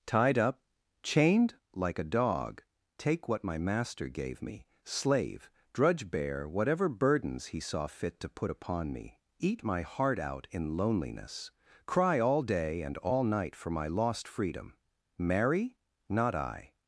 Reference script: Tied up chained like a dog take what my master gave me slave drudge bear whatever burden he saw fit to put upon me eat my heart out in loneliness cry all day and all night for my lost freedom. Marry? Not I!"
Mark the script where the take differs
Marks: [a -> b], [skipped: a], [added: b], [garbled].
Tied up chained like a dog take what my master gave me slave drudge bear whatever [burden -> burdens] he saw fit to put upon me eat my heart out in loneliness cry all day and all night for my lost freedom. Marry? Not I!"